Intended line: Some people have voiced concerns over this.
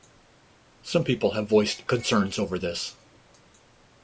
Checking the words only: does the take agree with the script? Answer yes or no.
yes